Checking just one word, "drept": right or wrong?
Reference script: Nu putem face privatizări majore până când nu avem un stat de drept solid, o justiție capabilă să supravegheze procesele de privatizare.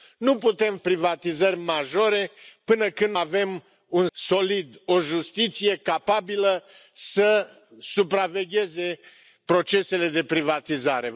wrong